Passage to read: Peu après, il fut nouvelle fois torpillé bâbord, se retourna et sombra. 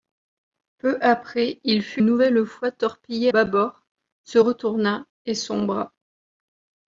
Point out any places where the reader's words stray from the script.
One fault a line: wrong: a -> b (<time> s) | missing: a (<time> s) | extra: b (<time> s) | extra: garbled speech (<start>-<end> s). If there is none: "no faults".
no faults